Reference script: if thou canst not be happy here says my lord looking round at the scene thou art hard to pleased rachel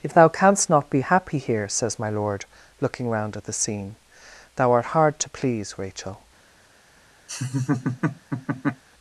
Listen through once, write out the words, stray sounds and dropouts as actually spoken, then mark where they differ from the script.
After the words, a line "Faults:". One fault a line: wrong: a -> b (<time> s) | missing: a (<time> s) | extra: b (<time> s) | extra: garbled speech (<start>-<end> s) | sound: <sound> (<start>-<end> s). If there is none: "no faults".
if thou canst not be happy here says my lord looking round at the scene thou art hard to please rachel
Faults:
wrong: pleased -> please (5.3 s)
sound: laugh (7.3-8.8 s)